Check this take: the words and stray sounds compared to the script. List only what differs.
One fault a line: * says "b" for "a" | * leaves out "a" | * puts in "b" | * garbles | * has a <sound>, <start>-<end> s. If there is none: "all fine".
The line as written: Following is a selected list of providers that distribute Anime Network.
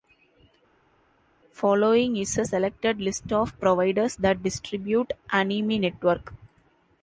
all fine